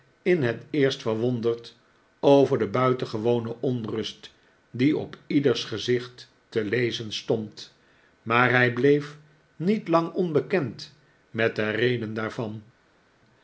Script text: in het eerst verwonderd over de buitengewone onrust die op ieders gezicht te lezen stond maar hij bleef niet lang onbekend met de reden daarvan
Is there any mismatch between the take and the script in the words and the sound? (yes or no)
no